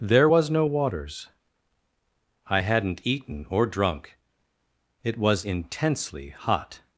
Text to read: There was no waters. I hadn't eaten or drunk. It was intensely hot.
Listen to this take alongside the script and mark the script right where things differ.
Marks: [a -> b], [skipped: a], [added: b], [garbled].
There was no waters. I hadn't eaten or drunk. It was intensely hot.